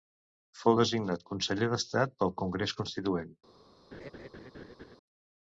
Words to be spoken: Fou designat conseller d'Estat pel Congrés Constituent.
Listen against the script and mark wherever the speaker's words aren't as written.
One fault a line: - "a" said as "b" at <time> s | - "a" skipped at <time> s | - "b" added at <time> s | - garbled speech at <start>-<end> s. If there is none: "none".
none